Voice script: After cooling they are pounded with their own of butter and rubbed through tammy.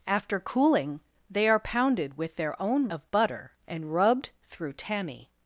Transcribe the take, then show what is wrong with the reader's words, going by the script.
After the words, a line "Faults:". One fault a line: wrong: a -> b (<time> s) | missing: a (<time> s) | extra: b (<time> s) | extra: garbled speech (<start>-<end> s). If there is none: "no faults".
After cooling they are pounded with their own of butter and rubbed through tammy.
Faults:
no faults